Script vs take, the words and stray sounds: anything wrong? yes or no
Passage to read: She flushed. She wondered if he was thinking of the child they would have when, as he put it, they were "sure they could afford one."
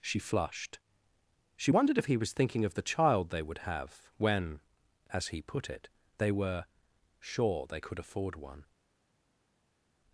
no